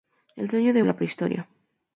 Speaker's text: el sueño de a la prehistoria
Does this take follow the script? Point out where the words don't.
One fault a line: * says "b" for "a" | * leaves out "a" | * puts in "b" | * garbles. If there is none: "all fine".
all fine